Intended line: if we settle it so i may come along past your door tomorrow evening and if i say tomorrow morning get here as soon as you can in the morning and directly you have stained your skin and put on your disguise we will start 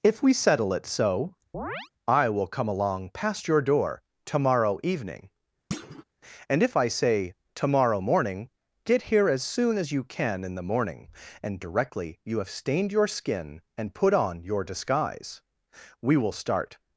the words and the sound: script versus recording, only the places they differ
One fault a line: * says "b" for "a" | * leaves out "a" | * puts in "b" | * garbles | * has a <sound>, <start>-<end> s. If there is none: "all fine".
* has a chirp, 1.5-1.9 s
* says "will" for "may"
* has a thud, 5.7-6.0 s